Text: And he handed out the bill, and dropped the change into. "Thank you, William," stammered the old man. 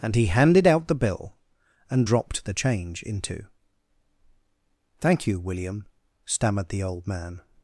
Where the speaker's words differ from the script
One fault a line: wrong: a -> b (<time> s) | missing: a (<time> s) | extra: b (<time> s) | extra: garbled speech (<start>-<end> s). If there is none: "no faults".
no faults